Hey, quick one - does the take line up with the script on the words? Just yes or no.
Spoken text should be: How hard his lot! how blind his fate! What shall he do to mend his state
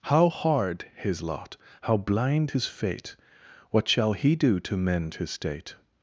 yes